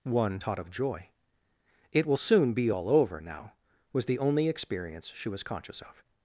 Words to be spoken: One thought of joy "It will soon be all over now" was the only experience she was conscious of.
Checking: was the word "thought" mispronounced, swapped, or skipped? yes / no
yes